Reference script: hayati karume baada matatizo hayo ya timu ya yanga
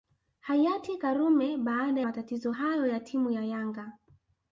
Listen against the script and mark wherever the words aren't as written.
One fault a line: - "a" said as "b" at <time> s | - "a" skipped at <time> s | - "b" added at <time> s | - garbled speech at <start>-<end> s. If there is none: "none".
none